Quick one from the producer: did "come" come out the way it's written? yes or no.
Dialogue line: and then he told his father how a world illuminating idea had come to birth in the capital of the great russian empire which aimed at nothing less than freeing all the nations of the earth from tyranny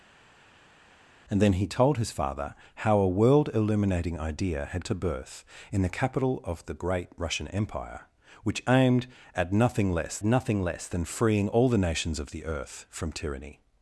no